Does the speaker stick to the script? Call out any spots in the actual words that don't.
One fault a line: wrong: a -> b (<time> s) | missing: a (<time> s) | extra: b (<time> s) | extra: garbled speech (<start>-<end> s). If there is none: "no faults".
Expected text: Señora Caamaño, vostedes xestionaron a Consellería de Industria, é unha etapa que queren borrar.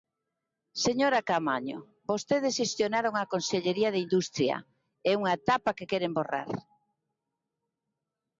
no faults